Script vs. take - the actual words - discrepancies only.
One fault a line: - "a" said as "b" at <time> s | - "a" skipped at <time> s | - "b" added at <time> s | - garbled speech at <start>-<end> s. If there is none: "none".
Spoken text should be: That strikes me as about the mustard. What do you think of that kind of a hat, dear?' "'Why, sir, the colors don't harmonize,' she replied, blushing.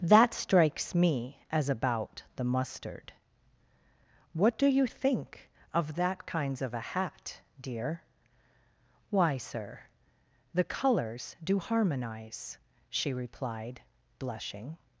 - "kind" said as "kinds" at 6.2 s
- "don't" said as "do" at 11.4 s